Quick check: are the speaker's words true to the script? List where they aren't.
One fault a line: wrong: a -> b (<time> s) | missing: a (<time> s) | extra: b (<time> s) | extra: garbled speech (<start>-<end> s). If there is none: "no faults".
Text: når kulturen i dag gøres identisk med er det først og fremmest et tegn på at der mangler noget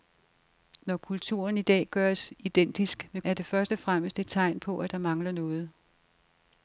no faults